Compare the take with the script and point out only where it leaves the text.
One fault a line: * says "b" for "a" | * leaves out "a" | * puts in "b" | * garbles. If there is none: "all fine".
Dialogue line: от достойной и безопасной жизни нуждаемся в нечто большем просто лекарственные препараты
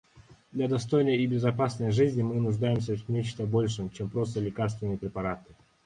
* says "для" for "от"
* puts in "мы"
* puts in "чем"